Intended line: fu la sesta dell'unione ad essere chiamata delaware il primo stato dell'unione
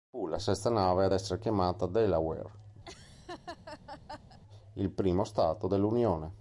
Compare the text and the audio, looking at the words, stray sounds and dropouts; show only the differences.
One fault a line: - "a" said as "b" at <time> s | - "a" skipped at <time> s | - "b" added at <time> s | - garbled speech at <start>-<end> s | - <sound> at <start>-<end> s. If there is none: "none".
- "dell'unione" said as "nave" at 0.7 s
- laugh at 2.8-4.4 s